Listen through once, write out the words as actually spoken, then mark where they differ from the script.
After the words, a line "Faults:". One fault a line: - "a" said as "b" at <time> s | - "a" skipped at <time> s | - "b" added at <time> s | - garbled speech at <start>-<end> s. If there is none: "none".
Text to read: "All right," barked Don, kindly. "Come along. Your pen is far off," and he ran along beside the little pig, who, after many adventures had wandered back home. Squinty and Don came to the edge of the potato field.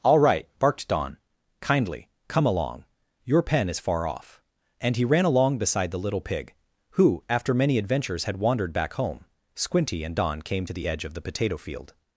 "All right," barked Don, kindly. "Come along. Your pen is far off," and he ran along beside the little pig, who, after many adventures had wandered back home. Squinty and Don came to the edge of the potato field.
Faults:
none